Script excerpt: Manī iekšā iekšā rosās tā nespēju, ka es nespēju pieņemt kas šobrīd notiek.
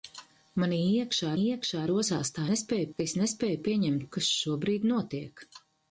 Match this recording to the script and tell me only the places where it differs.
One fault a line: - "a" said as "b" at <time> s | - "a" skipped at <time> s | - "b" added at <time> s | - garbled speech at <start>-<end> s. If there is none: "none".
none